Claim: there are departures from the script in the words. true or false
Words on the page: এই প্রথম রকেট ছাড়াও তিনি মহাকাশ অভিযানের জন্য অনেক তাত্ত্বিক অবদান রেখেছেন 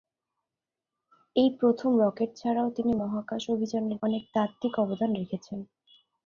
true